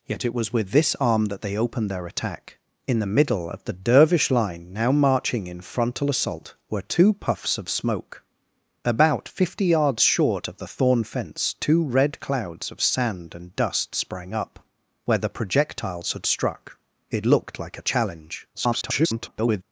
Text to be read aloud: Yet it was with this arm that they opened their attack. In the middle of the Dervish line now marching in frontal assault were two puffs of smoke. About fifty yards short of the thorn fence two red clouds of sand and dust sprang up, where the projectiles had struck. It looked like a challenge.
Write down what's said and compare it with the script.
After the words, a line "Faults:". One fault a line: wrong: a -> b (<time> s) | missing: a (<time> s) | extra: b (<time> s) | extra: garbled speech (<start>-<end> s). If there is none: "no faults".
Yet it was with this arm that they opened their attack. In the middle of the Dervish line now marching in frontal assault were two puffs of smoke. About fifty yards short of the thorn fence two red clouds of sand and dust sprang up, where the projectiles had struck. It looked like a challenge. [garbled]
Faults:
extra: garbled speech (18.5-19.6 s)